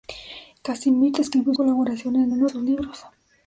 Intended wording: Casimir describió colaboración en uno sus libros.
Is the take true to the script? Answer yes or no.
yes